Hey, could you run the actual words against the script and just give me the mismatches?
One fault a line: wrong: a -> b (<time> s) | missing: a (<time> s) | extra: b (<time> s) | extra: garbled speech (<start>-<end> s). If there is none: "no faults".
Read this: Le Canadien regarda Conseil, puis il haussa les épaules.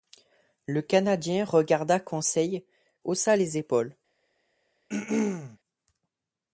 missing: puis il (2.7 s)